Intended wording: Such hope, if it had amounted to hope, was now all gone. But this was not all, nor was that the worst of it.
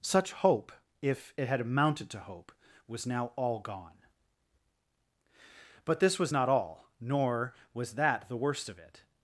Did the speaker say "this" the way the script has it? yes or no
yes